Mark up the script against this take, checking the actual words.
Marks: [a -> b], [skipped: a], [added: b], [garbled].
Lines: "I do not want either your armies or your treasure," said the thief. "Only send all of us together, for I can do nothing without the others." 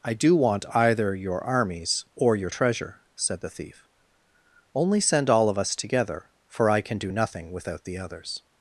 "I do [skipped: not] want either your armies or your treasure," said the thief. "Only send all of us together, for I can do nothing without the others."